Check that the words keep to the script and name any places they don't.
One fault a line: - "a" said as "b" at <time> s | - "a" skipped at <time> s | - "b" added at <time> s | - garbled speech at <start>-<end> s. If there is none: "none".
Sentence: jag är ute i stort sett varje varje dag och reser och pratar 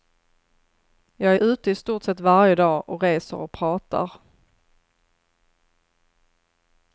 - "varje" skipped at 2.5 s